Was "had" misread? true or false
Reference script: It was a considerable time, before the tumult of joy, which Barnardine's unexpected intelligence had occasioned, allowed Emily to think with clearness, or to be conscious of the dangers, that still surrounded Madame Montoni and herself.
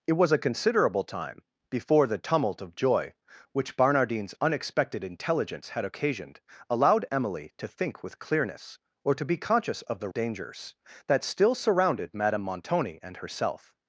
false